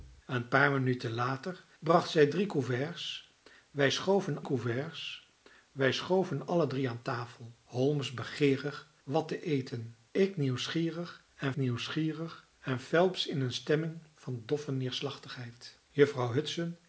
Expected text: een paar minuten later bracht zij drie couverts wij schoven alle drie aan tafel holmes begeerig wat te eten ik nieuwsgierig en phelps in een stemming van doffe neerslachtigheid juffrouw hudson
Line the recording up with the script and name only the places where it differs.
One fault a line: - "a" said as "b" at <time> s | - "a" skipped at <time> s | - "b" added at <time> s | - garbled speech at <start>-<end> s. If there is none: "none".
- "couverts wij schoven" added at 4.4 s
- "nieuwsgierig en" added at 11.6 s